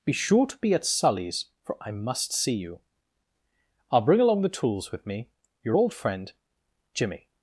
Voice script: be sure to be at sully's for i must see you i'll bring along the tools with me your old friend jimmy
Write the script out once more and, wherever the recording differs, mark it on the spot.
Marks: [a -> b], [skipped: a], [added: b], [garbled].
be sure to be at sully's for i must see you i'll bring along the tools with me your old friend jimmy